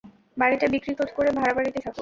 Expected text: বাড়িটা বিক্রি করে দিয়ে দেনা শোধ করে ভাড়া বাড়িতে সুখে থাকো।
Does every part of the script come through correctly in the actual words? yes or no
no